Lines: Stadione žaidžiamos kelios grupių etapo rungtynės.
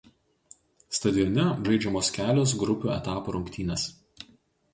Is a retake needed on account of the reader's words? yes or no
no